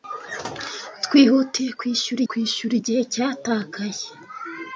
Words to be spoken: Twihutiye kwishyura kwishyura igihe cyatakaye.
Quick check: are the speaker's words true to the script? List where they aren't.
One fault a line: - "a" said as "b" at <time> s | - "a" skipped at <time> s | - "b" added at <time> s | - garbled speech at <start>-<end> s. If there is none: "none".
none